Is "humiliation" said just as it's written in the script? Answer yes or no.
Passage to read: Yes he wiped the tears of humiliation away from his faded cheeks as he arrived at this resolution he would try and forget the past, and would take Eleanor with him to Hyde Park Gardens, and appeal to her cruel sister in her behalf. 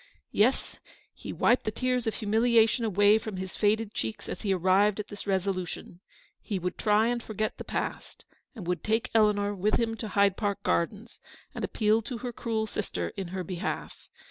yes